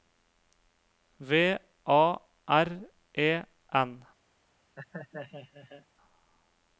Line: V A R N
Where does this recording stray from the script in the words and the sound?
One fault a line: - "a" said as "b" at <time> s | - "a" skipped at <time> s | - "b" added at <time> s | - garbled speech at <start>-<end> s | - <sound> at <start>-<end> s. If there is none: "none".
- "E" added at 3.1 s
- laugh at 4.8-5.9 s